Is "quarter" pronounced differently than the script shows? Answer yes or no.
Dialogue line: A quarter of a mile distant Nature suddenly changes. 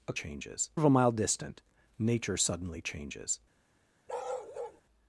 yes